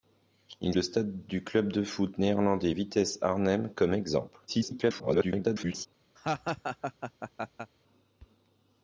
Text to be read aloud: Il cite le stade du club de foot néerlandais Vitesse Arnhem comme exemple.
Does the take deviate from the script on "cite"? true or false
true